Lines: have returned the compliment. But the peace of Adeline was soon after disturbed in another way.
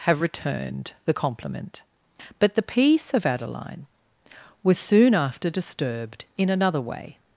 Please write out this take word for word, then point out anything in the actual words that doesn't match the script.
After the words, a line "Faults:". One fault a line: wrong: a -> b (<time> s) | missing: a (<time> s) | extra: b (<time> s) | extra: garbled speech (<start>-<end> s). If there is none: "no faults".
have returned the compliment. But the peace of Adeline was soon after disturbed in another way.
Faults:
no faults